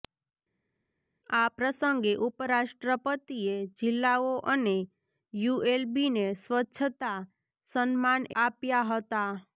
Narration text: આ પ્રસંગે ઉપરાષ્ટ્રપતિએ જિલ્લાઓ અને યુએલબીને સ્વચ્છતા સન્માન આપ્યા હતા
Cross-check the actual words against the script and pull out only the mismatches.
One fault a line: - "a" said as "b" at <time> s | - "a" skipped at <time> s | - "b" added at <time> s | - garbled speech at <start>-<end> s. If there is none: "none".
none